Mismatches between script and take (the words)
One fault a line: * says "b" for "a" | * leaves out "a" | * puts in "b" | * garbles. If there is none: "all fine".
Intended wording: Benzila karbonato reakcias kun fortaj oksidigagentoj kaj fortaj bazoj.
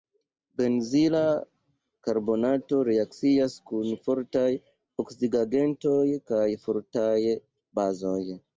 all fine